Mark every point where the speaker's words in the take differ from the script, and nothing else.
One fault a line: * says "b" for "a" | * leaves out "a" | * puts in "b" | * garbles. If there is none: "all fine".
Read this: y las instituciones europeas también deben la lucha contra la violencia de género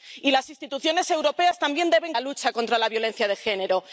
all fine